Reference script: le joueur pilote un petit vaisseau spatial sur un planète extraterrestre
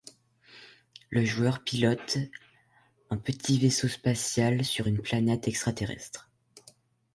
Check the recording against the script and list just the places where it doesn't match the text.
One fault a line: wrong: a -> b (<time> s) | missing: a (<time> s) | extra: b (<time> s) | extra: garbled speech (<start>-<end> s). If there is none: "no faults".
wrong: un -> une (4.8 s)